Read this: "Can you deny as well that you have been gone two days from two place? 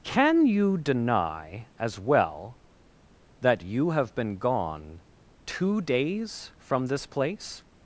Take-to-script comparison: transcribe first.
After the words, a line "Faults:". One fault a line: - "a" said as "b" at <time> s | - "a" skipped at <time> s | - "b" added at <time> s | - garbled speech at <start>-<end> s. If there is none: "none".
"Can you deny as well that you have been gone two days from this place?
Faults:
- "two" said as "this" at 6.9 s